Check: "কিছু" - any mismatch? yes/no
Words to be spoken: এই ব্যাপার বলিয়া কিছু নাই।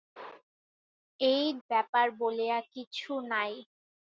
no